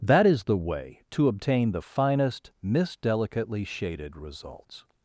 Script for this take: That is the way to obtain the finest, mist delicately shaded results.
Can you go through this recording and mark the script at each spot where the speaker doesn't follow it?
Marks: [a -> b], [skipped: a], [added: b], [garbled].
That is the way to obtain the finest, mist delicately shaded results.